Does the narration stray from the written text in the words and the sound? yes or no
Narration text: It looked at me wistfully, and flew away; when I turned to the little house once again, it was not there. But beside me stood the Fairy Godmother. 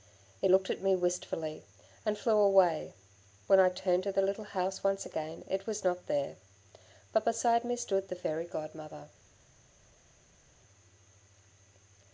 no